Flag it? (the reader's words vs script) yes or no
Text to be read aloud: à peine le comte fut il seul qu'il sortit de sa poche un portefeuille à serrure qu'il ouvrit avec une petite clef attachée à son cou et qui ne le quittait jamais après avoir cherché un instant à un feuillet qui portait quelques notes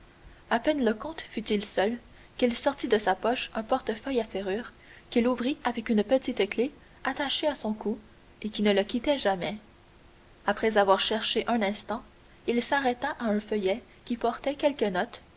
yes